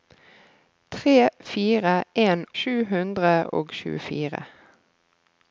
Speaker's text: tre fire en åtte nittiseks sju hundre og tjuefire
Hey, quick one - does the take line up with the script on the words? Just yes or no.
no